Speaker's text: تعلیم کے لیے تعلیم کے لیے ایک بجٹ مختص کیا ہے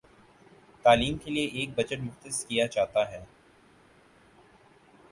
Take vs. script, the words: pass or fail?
fail